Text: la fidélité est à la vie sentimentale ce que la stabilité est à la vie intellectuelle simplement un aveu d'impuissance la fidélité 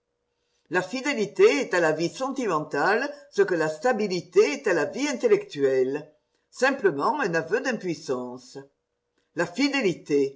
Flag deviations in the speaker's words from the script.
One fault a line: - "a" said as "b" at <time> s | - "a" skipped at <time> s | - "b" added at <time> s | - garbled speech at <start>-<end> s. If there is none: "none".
none